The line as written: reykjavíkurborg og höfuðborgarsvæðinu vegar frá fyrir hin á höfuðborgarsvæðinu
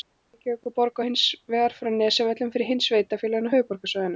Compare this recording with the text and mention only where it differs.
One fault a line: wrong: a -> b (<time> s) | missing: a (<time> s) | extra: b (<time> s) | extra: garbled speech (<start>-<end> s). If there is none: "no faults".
wrong: höfuðborgarsvæðinu -> hins (1.1 s)
extra: nesjavöllum (2.0 s)
extra: sveitarfélögin (2.9 s)